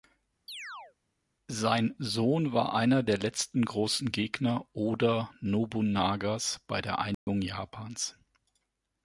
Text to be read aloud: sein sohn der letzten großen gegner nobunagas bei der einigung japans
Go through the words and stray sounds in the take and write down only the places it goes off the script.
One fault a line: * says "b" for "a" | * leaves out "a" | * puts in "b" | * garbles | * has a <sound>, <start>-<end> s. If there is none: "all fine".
* has a chirp, 0.5-0.9 s
* puts in "war einer"
* puts in "oda"
* has a dropout, 7.1-7.3 s